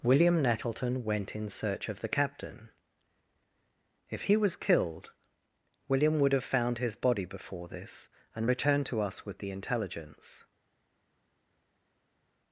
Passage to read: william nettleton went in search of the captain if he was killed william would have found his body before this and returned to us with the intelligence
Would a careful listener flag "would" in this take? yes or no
no